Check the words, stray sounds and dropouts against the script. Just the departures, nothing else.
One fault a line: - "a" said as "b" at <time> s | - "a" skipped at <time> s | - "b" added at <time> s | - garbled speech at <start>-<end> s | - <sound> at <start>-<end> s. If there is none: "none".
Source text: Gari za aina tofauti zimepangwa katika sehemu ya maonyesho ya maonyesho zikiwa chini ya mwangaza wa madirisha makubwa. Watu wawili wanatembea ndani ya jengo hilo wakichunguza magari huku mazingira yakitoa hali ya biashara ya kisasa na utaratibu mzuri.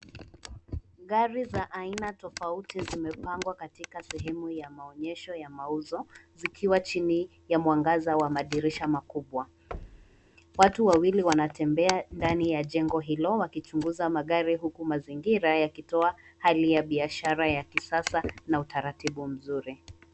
- "maonyesho" said as "mauzo" at 5.5 s
- thud at 9.7-10.3 s